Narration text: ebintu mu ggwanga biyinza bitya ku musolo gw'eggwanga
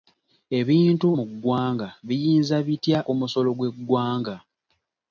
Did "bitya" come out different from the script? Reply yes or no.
no